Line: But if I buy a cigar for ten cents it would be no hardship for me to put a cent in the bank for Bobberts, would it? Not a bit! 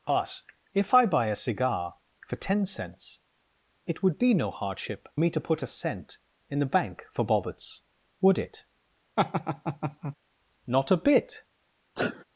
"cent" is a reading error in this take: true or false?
false